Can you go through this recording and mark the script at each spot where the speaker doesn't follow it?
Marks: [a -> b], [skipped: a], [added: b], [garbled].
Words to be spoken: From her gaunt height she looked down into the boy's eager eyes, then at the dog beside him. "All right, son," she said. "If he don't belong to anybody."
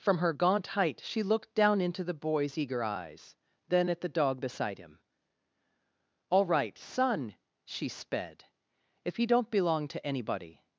From her gaunt height she looked down into the boy's eager eyes, then at the dog beside him. "All right, son," she [said. -> sped] "If he don't belong to anybody."